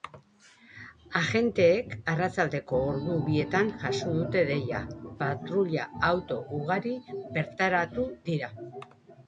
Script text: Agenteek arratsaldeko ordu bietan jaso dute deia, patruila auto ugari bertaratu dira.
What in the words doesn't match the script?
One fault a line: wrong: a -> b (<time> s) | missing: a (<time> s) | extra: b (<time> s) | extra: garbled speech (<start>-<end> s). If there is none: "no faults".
no faults